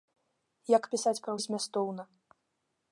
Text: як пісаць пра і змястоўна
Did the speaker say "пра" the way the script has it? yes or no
yes